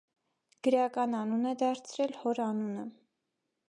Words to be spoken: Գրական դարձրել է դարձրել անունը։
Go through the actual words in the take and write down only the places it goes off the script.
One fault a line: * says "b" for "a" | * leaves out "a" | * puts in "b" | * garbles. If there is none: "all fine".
* says "անուն" for "դարձրել"
* puts in "հոր"